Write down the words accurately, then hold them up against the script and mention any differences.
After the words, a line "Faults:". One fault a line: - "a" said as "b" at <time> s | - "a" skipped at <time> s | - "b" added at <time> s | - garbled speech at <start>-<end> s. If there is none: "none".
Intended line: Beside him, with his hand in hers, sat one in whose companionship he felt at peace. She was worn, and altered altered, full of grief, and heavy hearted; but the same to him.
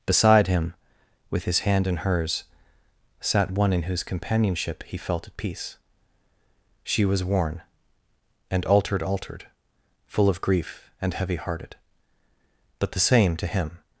Beside him, with his hand in hers, sat one in whose companionship he felt at peace. She was worn, and altered altered, full of grief, and heavy hearted; but the same to him.
Faults:
none